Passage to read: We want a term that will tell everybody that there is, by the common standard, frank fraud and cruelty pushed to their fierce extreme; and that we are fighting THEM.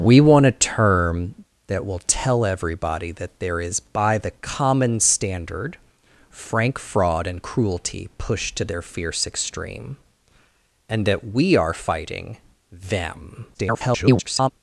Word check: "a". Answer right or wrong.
right